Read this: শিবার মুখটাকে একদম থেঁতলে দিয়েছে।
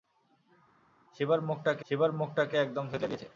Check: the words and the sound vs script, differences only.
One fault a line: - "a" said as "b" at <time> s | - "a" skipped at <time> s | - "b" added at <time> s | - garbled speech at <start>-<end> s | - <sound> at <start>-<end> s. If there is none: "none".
- "শিবার মুখটাকে" added at 1.8 s